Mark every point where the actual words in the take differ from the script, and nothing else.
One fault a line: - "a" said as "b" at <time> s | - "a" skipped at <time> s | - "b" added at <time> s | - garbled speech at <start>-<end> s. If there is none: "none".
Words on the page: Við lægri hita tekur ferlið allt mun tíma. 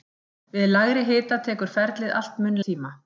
none